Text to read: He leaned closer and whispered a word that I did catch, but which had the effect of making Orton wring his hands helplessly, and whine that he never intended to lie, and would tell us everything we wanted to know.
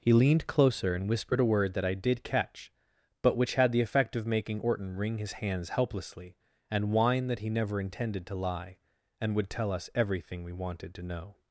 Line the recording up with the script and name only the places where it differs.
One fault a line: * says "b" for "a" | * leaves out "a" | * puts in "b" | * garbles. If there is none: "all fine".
all fine